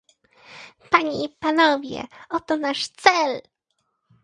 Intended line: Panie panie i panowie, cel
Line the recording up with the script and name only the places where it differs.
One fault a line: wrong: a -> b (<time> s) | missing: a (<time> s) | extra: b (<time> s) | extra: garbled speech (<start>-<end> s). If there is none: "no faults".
missing: panie (1.2 s)
extra: oto nasz (2.3 s)